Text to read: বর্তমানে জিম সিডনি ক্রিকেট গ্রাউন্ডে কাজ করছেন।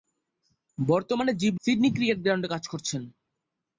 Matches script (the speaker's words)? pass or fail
pass